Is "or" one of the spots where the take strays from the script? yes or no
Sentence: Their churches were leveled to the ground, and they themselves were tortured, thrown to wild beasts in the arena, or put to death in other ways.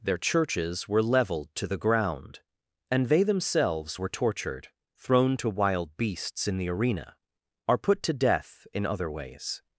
yes